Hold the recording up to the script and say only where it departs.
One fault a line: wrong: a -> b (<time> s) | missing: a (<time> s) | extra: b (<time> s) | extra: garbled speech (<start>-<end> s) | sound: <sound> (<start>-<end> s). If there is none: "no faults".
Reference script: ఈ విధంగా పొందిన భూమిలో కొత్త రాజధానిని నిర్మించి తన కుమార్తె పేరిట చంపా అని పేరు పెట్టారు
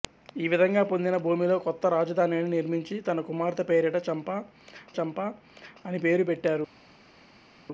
extra: చంపా (5.0 s)